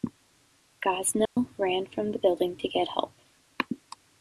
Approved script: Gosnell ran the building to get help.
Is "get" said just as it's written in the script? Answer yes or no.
yes